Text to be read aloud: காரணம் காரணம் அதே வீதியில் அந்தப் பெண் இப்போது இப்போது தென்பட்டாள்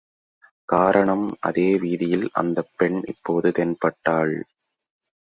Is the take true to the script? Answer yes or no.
no